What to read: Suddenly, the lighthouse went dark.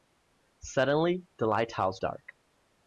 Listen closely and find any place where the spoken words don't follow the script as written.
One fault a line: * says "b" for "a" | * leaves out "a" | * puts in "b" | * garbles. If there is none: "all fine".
* leaves out "went"